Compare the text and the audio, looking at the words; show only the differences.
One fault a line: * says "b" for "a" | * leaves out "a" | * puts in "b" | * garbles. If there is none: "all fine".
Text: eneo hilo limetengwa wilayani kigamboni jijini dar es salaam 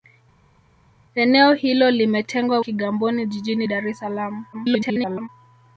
* leaves out "wilayani"
* garbles